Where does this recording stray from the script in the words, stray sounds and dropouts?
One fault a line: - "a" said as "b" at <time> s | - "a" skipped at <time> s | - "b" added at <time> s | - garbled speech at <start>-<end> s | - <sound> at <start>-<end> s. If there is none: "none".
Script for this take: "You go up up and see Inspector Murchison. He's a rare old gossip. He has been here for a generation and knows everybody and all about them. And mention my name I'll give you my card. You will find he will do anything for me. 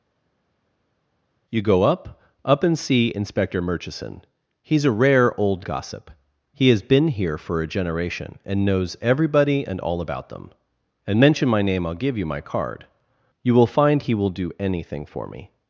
none